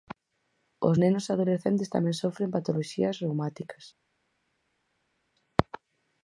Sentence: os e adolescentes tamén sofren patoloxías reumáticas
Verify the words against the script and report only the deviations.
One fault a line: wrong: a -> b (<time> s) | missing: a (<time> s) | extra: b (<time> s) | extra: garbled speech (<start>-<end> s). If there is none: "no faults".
extra: nenos (1.0 s)